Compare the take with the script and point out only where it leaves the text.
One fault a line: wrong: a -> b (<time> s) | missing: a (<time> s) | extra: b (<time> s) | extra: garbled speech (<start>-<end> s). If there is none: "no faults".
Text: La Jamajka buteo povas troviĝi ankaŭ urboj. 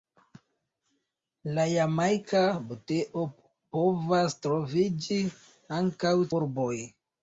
no faults